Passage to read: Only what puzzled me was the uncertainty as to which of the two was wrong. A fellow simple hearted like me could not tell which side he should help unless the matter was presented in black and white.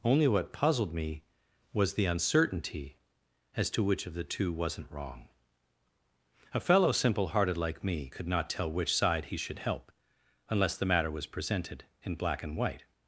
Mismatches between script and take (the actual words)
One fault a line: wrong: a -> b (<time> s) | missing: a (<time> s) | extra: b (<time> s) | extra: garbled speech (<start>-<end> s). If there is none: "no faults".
wrong: was -> wasn't (4.5 s)